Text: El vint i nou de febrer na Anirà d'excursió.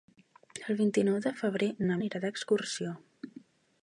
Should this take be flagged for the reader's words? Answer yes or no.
no